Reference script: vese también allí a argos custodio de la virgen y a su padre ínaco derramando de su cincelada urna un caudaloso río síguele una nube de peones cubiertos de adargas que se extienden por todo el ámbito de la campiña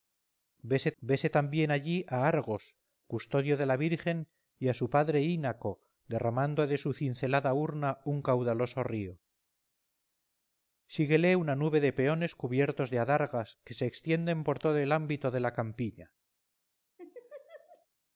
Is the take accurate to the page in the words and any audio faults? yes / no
no